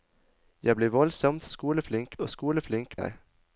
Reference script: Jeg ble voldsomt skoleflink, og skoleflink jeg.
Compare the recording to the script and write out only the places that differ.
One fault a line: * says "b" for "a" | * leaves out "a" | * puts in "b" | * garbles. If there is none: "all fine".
all fine